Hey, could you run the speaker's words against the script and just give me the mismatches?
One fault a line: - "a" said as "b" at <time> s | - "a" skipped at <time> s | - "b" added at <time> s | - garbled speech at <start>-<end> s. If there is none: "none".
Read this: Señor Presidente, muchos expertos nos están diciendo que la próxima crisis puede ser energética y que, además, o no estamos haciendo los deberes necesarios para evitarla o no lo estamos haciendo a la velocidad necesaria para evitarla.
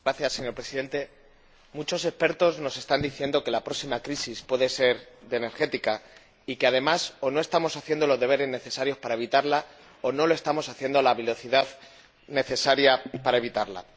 none